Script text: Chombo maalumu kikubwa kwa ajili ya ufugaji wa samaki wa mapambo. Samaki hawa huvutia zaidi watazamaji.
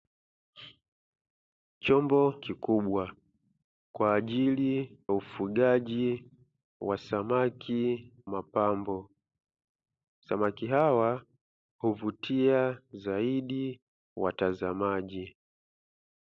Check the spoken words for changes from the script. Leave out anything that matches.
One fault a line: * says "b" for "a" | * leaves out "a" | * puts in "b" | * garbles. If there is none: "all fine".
* leaves out "maalumu"
* leaves out "ya"
* leaves out "wa"